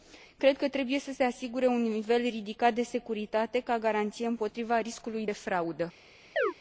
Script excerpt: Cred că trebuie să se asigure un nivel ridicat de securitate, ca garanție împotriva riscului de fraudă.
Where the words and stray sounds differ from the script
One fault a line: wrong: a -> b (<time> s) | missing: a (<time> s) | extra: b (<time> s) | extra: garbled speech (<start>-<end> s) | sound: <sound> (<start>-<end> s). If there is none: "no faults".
sound: chirp (6.4-6.5 s)